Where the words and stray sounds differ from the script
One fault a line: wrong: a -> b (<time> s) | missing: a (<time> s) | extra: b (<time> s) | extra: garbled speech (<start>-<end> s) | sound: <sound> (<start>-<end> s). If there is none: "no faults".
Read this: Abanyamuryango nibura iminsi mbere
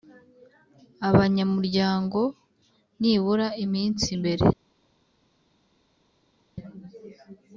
no faults